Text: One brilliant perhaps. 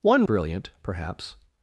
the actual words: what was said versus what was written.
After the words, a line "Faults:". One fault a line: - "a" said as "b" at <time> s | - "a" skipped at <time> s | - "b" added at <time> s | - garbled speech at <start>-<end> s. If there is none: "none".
One brilliant perhaps.
Faults:
none